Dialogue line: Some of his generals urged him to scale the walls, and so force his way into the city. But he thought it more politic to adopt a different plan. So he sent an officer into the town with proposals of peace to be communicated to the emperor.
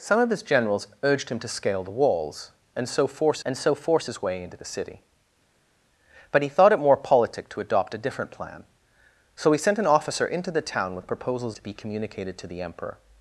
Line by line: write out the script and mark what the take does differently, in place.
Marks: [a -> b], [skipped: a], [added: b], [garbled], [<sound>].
Some of his generals urged him to scale the walls, and so force [added: and so force] his way into the city. But he thought it more politic to adopt a different plan. So he sent an officer into the town with proposals [skipped: of peace] to be communicated to the emperor.